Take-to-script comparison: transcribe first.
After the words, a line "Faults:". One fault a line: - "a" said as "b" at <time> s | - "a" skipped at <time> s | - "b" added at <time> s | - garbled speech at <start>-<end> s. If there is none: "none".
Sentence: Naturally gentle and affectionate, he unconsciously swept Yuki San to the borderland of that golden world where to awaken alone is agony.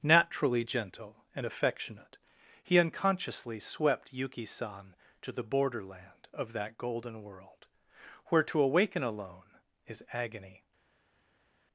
Naturally gentle and affectionate, he unconsciously swept Yuki San to the borderland of that golden world where to awaken alone is agony.
Faults:
none